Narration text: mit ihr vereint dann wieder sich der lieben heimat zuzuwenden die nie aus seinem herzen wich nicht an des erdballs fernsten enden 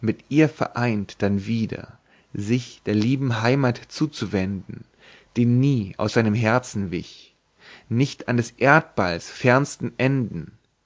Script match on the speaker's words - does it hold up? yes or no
yes